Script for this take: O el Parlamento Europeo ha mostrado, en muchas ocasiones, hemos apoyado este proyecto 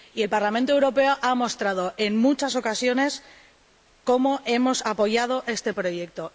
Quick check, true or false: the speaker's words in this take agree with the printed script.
false